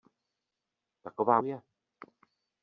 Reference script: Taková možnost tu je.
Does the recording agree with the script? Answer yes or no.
no